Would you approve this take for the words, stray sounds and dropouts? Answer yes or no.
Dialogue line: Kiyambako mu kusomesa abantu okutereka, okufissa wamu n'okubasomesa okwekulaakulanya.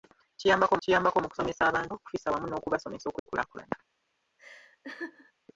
no